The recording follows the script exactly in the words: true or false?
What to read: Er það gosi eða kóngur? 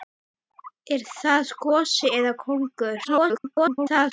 false